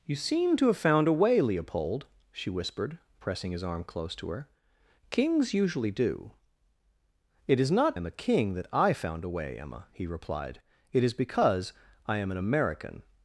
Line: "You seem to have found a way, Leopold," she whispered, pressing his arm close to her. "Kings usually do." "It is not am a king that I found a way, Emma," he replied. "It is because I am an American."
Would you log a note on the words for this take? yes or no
no